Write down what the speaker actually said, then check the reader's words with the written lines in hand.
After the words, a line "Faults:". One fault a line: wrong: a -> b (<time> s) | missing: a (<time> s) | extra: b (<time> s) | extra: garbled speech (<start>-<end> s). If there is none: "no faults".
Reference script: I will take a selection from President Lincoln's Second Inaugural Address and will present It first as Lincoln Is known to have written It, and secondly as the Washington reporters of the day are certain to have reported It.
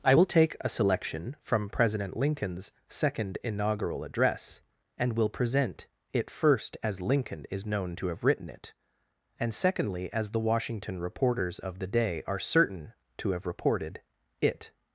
I will take a selection from President Lincoln's Second Inaugural Address and will present It first as Lincoln Is known to have written It, and secondly as the Washington reporters of the day are certain to have reported It.
Faults:
no faults